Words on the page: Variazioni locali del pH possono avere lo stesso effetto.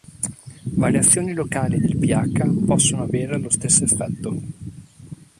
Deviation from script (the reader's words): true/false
false